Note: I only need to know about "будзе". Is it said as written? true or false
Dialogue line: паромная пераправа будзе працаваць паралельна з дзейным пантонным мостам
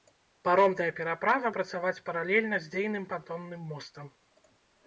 false